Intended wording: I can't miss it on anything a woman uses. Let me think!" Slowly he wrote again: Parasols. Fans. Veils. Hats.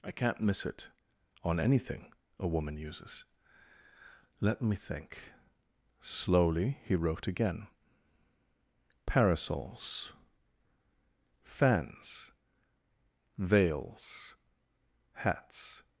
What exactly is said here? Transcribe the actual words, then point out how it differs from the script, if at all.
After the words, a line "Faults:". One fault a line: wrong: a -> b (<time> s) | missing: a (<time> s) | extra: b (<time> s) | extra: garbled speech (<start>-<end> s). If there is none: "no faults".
I can't miss it on anything a woman uses. Let me think!" Slowly he wrote again: Parasols. Fans. Veils. Hats.
Faults:
no faults